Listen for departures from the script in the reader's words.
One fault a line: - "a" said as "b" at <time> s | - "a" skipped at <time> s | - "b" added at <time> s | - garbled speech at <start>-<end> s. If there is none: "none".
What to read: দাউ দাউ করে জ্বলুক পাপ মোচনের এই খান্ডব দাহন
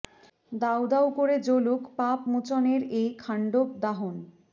none